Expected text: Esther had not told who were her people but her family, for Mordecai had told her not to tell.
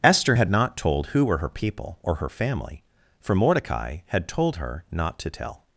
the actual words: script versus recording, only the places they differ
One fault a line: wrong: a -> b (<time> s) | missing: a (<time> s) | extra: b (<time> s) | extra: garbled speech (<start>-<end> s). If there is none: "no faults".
wrong: but -> or (2.0 s)